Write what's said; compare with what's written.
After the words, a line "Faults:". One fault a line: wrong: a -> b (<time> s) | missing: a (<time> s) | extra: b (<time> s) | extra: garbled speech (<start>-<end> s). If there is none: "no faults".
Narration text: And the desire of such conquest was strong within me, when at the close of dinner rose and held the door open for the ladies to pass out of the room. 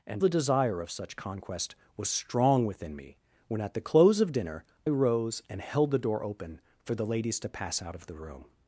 And the desire of such conquest was strong within me, when at the close of dinner rose and held the door open for the ladies to pass out of the room.
Faults:
no faults